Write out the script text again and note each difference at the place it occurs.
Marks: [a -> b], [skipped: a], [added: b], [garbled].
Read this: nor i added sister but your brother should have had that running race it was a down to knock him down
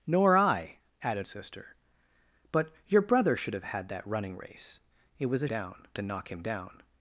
nor i added sister but your brother should have had that running race it was a down to knock him down